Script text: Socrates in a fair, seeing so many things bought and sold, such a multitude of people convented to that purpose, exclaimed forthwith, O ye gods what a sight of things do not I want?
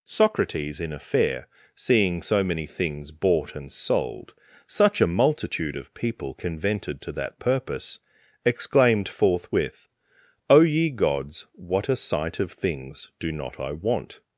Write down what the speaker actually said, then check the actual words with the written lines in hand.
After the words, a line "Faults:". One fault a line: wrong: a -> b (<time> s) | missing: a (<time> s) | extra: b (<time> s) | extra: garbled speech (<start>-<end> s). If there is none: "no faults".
Socrates in a fair, seeing so many things bought and sold, such a multitude of people convented to that purpose, exclaimed forthwith, O ye gods what a sight of things do not I want?
Faults:
no faults